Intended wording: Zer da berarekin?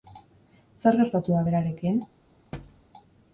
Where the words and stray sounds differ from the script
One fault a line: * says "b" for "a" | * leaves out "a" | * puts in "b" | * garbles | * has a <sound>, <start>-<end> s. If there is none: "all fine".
* puts in "gertatu"
* has a thud, 2.5-2.8 s